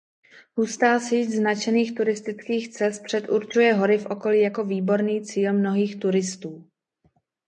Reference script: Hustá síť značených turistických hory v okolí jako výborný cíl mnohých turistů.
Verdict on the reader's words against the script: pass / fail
fail